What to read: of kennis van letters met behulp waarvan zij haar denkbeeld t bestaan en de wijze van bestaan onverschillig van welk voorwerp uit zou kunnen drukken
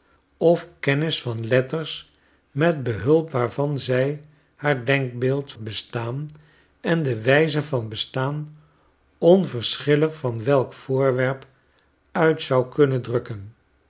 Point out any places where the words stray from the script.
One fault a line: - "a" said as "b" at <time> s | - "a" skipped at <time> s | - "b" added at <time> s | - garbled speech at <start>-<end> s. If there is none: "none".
none